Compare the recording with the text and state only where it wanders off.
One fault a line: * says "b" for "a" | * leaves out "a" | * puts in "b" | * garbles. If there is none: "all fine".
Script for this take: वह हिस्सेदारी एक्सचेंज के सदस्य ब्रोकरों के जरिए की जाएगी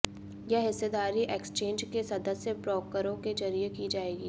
* says "यह" for "वह"